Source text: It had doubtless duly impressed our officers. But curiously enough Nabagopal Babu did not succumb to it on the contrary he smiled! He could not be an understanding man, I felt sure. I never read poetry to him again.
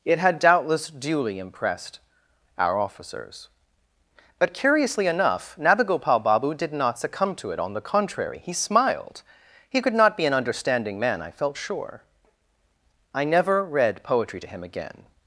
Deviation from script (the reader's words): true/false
false